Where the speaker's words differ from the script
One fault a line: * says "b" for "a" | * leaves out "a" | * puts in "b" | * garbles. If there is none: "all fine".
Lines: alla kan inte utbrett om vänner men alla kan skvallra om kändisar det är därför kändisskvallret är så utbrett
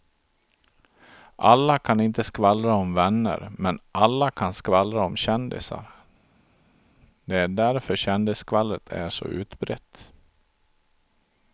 * says "skvallra" for "utbrett"